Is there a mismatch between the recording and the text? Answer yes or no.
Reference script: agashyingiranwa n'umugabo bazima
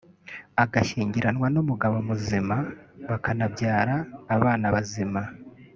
yes